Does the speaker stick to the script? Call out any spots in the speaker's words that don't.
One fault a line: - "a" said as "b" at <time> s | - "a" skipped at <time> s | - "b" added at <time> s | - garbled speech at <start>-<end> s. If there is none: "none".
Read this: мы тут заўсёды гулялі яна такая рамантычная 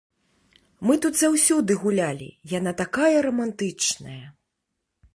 none